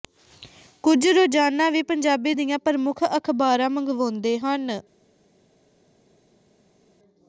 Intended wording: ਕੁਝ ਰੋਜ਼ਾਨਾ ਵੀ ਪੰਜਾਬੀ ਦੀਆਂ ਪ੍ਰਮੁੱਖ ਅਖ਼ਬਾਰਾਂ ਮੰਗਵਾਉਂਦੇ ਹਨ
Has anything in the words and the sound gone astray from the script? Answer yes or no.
no